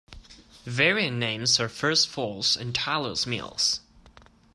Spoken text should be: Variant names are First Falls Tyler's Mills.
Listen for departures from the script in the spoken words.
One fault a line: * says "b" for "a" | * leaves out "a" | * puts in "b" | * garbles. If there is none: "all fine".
* puts in "and"